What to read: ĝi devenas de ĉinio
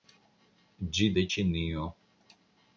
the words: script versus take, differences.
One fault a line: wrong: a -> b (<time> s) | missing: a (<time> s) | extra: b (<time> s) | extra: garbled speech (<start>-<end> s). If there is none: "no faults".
missing: devenas (1.1 s)